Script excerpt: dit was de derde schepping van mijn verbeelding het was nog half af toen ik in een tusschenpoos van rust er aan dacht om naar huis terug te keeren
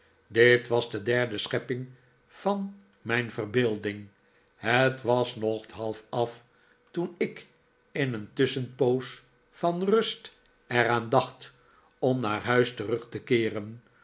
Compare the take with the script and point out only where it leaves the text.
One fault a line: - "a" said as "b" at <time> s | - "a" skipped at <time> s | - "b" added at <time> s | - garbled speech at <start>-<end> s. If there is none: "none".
none